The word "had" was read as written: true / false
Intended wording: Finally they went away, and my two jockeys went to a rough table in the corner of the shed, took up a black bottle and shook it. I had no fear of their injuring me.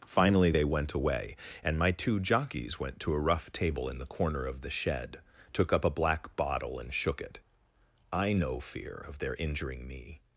false